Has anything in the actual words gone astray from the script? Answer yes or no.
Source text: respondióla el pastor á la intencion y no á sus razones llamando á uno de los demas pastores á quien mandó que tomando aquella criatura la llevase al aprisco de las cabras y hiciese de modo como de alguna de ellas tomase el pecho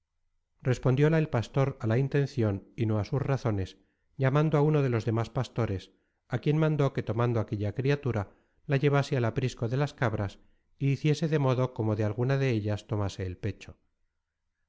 no